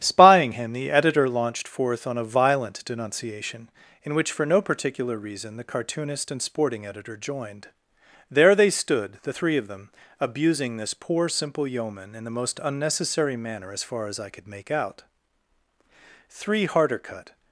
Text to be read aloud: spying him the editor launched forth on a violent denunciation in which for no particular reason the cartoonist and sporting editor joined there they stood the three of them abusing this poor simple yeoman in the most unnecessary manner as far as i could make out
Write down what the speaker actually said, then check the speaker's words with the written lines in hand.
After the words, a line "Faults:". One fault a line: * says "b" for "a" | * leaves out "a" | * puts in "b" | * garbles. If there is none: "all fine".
spying him the editor launched forth on a violent denunciation in which for no particular reason the cartoonist and sporting editor joined there they stood the three of them abusing this poor simple yeoman in the most unnecessary manner as far as i could make out three harder cut
Faults:
* puts in "three harder cut"